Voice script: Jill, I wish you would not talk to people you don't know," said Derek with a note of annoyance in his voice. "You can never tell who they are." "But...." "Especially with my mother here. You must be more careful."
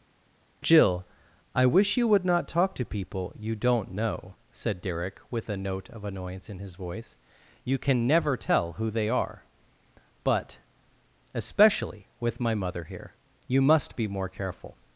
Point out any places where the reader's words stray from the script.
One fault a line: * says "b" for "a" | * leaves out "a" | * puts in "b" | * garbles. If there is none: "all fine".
all fine